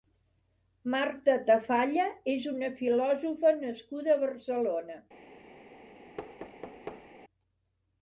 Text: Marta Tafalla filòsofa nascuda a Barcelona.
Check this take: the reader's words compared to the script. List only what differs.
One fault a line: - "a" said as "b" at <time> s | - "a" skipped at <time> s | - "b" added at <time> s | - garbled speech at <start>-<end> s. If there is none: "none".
- "és una" added at 2.4 s